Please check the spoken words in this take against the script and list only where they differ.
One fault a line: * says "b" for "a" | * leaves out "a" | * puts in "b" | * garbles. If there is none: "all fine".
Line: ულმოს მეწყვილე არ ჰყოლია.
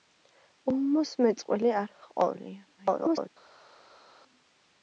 * garbles